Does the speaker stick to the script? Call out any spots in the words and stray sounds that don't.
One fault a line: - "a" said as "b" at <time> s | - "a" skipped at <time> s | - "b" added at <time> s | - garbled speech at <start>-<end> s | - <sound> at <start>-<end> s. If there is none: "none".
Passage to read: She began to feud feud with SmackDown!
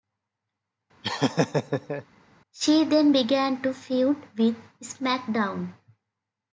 - laugh at 1.0-2.0 s
- "then" added at 2.8 s
- "feud" skipped at 4.2 s